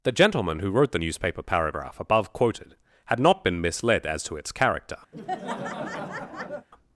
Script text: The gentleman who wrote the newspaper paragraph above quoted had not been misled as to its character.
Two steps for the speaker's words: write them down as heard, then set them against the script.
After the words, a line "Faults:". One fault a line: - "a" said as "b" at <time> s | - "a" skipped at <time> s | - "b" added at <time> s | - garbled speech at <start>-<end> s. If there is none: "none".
The gentleman who wrote the newspaper paragraph above quoted had not been misled as to its character.
Faults:
none